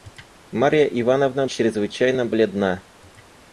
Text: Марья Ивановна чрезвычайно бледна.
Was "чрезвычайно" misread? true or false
false